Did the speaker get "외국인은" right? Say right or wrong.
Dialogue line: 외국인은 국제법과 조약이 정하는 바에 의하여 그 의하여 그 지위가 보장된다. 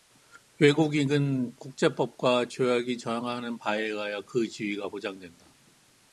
right